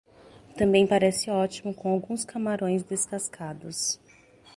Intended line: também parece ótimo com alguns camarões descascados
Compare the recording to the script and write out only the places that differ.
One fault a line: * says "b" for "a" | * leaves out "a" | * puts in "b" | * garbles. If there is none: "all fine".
all fine